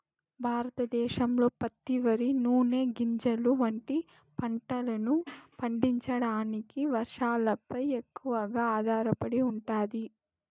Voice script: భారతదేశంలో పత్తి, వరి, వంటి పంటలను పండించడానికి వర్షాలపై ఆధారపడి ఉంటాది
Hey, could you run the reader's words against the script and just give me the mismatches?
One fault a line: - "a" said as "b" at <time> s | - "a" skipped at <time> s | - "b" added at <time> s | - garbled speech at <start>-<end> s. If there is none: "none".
- "నూనె గింజలు" added at 2.4 s
- "ఎక్కువగా" added at 8.0 s